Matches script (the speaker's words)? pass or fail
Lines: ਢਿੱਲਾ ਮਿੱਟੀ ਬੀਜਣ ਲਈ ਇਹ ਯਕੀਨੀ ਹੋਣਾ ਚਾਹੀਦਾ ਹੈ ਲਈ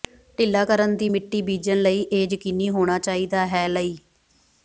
fail